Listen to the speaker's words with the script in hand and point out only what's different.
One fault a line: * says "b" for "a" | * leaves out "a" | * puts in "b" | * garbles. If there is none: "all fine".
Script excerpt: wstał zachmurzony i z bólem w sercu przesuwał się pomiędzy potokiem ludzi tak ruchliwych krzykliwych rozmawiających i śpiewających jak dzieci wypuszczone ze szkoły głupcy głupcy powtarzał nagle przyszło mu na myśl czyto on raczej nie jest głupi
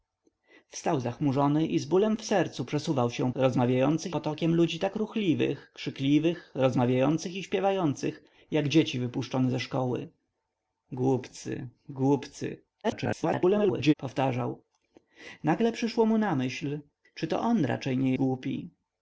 * says "rozmawiających" for "pomiędzy"
* garbles
* leaves out "jest"